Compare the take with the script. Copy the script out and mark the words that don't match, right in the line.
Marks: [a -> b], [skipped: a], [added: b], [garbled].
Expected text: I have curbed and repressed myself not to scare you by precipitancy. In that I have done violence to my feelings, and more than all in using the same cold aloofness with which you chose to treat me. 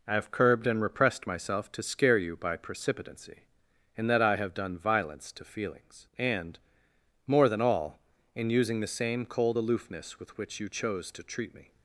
I have curbed and repressed myself [skipped: not] to scare you by precipitancy. In that I have done violence to [skipped: my] feelings, and more than all in using the same cold aloofness with which you chose to treat me.